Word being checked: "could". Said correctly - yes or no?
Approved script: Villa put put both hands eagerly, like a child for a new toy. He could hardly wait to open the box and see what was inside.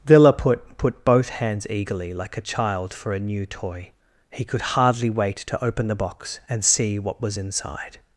yes